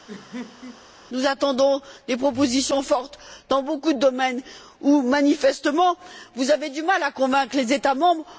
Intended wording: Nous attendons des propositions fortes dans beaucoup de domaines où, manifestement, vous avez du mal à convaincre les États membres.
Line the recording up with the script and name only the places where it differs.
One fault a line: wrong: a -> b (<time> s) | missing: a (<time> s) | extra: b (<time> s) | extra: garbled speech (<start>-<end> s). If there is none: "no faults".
no faults